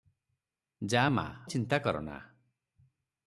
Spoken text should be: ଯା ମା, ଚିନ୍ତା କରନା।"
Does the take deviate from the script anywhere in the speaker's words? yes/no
no